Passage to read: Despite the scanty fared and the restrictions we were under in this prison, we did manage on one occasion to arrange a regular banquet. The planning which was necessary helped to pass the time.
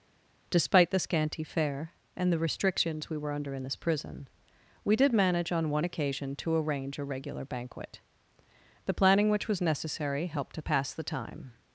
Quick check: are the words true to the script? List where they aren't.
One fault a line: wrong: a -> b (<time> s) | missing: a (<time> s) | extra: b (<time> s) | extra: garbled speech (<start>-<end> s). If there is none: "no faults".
wrong: fared -> fare (1.4 s)